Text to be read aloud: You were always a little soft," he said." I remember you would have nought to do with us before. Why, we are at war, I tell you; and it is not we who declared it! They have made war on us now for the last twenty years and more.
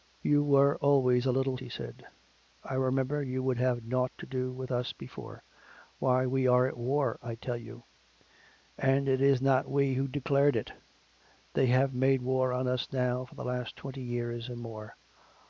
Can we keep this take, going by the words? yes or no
no